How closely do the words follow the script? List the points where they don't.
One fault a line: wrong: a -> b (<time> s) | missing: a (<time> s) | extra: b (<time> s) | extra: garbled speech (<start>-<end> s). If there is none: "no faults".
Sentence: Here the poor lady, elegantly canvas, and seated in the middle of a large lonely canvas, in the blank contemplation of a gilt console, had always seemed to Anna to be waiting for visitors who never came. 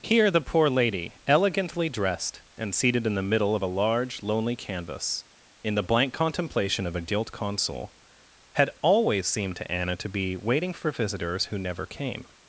wrong: canvas -> dressed (1.9 s)